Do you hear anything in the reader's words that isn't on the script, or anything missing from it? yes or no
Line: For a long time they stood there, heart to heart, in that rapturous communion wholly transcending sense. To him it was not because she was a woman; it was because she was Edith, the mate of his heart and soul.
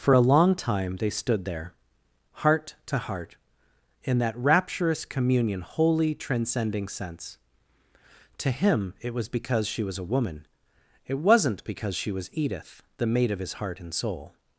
yes